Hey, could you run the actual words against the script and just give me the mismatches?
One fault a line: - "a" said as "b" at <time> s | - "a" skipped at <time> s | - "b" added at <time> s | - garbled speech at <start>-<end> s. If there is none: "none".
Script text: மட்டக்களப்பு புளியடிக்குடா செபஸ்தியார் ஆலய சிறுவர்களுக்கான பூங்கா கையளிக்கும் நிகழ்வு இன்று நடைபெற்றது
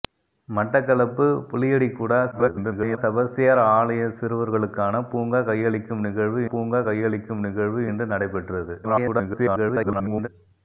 - garbled speech at 2.3-3.0 s
- "பூங்கா கையளிக்கும் நிகழ்வு" added at 6.5 s
- garbled speech at 8.8-10.3 s